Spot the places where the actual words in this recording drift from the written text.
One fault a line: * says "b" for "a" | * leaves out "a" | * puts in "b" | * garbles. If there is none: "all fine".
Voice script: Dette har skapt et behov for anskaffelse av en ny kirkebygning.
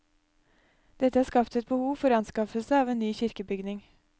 all fine